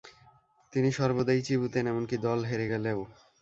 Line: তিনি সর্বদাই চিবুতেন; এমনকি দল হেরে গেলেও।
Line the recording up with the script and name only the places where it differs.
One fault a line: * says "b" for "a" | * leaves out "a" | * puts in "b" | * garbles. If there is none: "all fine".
all fine